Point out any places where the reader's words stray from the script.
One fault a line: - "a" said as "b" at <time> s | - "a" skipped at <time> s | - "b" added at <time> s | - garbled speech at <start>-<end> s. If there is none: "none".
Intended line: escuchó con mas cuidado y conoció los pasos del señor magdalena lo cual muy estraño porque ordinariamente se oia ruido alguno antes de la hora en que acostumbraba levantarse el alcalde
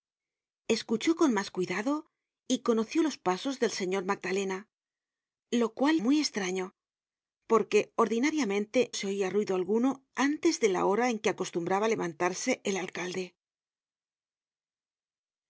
none